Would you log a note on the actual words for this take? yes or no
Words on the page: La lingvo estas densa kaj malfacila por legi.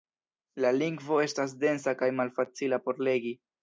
no